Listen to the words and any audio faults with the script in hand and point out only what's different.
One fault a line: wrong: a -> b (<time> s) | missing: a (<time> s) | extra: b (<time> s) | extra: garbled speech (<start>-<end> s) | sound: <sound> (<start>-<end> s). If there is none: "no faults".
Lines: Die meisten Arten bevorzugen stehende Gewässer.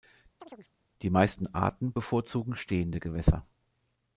sound: chirp (0.4-0.7 s)